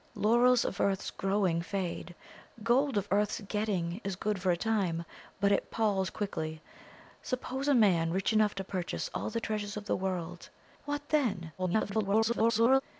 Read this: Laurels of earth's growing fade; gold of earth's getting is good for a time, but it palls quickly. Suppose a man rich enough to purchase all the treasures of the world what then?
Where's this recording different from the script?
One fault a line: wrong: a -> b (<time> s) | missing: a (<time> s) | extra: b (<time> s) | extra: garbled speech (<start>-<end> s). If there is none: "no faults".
extra: garbled speech (11.6-12.8 s)